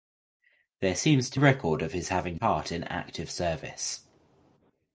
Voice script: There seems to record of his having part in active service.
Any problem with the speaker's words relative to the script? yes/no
no